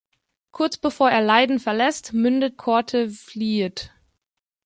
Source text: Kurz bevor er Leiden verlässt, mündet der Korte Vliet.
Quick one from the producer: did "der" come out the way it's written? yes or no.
no